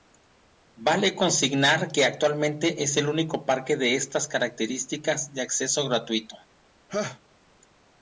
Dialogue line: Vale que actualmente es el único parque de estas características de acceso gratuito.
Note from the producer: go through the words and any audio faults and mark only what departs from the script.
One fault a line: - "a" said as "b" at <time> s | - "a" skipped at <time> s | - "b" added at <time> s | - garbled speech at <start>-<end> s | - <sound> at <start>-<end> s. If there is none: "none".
- "consignar" added at 1.1 s
- laugh at 6.9-7.2 s